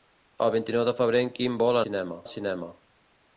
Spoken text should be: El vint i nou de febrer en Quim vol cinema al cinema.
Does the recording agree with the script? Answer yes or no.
yes